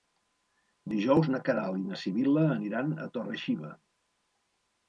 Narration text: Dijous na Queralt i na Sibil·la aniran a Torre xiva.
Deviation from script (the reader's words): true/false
false